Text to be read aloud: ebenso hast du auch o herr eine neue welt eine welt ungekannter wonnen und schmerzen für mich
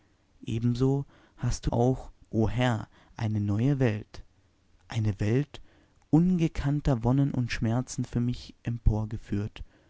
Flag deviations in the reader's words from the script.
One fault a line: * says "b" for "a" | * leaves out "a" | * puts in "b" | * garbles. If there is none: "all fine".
all fine